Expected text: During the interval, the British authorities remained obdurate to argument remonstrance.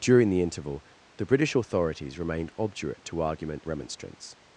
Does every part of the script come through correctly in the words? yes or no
yes